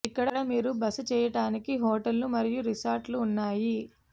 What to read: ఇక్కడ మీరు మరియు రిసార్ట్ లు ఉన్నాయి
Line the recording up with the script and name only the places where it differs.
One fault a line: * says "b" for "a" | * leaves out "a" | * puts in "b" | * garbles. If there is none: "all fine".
* puts in "బస చేయటానికి హోటళ్లు"